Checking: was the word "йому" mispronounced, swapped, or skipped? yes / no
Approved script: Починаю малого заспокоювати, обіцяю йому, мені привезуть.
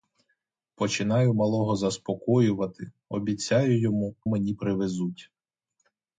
no